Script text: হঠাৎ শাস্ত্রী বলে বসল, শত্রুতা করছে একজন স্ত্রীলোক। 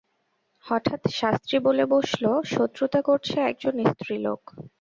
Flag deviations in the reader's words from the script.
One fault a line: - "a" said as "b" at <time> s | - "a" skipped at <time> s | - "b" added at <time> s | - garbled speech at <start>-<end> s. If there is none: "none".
none